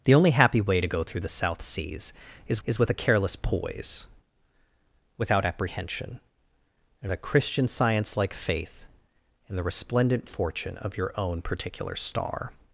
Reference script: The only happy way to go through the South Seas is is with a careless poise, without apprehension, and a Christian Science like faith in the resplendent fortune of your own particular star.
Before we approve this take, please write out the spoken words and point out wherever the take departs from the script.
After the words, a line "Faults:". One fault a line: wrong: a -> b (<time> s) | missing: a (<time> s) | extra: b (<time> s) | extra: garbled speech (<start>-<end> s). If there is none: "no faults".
The only happy way to go through the South Seas is is with a careless poise, without apprehension, and a Christian Science like faith in the resplendent fortune of your own particular star.
Faults:
no faults